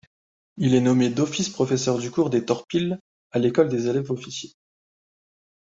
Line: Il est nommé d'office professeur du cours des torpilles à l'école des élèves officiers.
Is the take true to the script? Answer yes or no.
yes